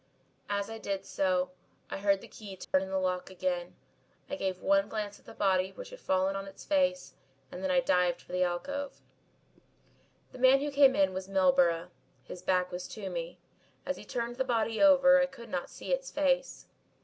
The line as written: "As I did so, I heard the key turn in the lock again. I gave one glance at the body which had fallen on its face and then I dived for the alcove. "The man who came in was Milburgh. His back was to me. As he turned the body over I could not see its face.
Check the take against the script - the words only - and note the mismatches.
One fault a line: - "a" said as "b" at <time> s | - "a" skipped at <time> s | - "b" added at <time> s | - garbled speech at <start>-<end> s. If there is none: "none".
none